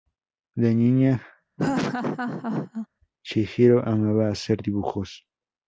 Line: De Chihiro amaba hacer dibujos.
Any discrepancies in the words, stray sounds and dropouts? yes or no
yes